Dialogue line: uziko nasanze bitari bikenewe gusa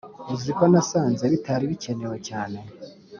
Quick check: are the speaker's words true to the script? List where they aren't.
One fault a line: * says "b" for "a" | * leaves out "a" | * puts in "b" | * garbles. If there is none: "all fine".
* says "cyane" for "gusa"